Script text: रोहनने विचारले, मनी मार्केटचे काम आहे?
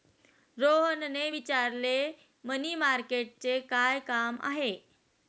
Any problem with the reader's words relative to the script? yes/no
yes